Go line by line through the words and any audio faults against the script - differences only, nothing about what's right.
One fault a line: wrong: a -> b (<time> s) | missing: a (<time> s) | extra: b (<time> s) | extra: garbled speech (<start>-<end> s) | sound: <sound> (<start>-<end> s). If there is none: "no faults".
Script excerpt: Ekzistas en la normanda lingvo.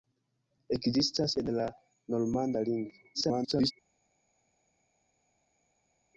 extra: garbled speech (3.1-3.7 s)